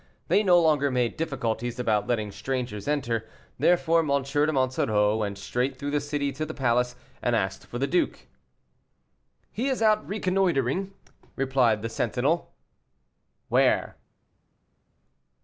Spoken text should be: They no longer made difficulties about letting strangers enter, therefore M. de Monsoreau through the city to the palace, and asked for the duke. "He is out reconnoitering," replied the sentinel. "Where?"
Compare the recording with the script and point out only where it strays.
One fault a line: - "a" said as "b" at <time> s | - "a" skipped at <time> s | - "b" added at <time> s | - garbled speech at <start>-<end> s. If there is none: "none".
- "went straight" added at 5.2 s